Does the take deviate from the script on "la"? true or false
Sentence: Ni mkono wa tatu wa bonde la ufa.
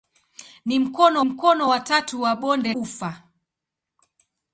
true